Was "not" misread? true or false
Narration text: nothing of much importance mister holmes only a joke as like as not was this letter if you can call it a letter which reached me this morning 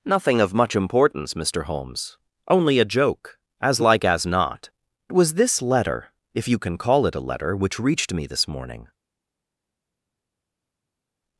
false